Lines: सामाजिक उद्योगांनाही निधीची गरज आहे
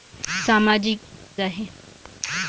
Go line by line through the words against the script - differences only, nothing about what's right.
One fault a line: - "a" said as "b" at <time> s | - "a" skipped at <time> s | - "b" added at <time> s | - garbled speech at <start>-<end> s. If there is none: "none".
- "उद्योगांनाही निधीची गरज" skipped at 1.0 s